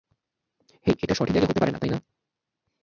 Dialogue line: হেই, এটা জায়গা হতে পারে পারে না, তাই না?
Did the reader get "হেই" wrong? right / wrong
right